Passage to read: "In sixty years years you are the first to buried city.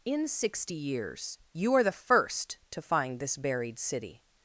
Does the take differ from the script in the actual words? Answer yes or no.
yes